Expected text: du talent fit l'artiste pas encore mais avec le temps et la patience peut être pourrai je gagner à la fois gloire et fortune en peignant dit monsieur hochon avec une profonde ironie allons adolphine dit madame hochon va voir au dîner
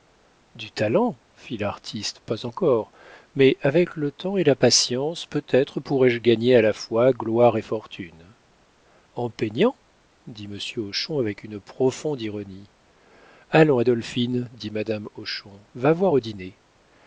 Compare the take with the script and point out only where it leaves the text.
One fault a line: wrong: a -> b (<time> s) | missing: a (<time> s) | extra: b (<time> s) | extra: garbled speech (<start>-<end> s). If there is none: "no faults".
no faults